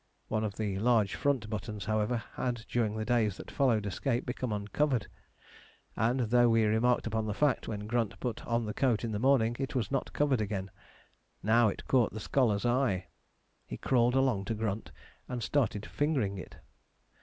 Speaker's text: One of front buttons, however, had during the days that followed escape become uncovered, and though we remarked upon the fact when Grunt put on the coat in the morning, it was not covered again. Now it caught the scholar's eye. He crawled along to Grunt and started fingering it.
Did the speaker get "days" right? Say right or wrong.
right